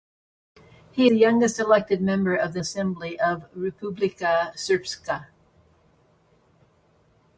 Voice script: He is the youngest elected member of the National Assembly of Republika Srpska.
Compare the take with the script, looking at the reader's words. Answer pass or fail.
fail